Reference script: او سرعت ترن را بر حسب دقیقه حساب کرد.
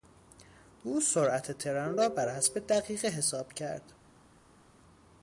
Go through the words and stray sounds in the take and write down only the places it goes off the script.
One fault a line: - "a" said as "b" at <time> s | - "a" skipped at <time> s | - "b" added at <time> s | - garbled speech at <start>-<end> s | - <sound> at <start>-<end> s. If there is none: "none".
none